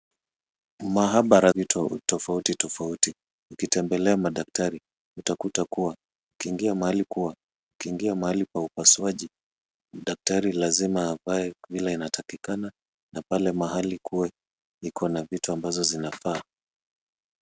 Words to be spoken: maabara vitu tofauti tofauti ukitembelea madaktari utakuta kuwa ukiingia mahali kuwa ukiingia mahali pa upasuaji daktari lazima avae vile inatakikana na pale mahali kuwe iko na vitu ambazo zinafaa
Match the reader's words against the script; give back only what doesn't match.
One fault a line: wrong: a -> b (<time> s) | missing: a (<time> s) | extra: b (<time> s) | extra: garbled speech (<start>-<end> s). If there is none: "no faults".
no faults